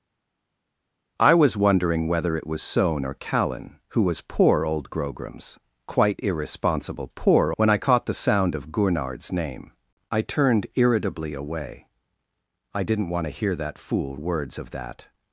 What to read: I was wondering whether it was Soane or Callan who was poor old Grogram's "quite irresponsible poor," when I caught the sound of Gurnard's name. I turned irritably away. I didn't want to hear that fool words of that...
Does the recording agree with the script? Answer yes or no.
yes